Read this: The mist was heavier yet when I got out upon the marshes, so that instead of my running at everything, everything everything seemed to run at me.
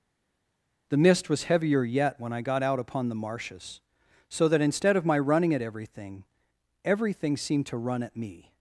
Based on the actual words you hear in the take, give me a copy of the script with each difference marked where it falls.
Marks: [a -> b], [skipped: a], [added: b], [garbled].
The mist was heavier yet when I got out upon the marshes, so that instead of my running at everything, everything [skipped: everything] seemed to run at me.